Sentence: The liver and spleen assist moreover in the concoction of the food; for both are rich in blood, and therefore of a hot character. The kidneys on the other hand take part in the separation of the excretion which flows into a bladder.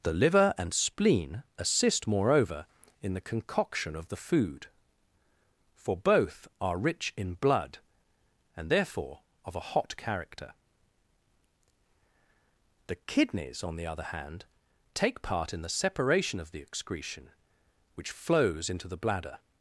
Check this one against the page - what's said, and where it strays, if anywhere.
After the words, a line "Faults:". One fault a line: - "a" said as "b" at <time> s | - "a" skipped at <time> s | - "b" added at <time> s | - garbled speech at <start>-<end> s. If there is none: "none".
The liver and spleen assist moreover in the concoction of the food; for both are rich in blood, and therefore of a hot character. The kidneys on the other hand take part in the separation of the excretion which flows into the bladder.
Faults:
- "a" said as "the" at 18.9 s